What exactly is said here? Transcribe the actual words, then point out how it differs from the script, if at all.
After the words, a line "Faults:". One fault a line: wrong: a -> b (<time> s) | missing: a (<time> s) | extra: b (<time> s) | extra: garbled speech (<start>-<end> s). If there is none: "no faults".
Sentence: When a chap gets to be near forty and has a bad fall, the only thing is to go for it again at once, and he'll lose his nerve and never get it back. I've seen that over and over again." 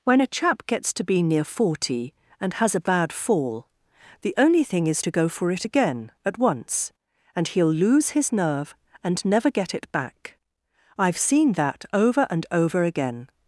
When a chap gets to be near forty and has a bad fall, the only thing is to go for it again at once, and he'll lose his nerve and never get it back. I've seen that over and over again."
Faults:
no faults